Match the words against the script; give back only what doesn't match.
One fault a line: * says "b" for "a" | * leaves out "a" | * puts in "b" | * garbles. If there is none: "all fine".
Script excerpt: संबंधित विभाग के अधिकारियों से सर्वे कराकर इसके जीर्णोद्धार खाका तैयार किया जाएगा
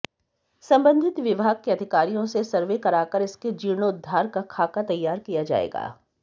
* puts in "का"